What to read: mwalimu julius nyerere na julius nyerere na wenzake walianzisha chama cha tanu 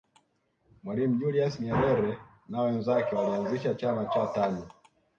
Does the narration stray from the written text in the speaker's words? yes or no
yes